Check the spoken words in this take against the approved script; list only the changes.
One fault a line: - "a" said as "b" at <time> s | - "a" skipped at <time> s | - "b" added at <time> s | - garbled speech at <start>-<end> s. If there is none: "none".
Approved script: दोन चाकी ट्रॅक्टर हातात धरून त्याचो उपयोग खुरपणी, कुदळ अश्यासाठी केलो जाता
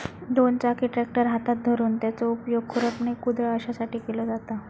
none